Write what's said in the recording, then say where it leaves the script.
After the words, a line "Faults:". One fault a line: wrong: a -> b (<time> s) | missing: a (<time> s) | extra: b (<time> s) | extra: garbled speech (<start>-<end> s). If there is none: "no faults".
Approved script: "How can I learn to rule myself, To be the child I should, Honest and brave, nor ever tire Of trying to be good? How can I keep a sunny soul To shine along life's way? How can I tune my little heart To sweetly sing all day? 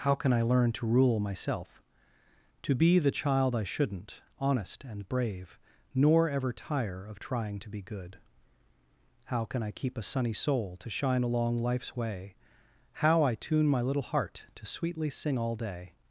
"How can I learn to rule myself, To be the child I shouldn't, Honest and brave, nor ever tire Of trying to be good? How can I keep a sunny soul To shine along life's way? How I tune my little heart To sweetly sing all day?
Faults:
wrong: should -> shouldn't (3.6 s)
missing: can (13.2 s)